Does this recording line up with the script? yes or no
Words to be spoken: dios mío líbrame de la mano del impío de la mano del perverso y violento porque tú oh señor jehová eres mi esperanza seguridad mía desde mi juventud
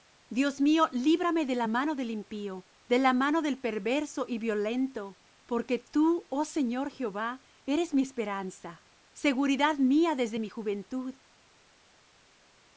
yes